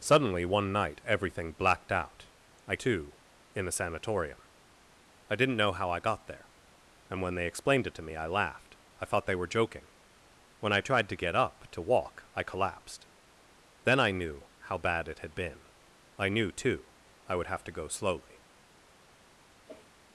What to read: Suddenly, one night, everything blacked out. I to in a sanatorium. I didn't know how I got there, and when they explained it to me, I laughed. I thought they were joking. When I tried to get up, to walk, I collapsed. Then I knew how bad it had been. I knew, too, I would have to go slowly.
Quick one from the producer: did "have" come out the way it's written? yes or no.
yes